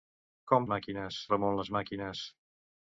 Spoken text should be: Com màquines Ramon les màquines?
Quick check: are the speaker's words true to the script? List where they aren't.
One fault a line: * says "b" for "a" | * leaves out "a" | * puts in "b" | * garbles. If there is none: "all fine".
all fine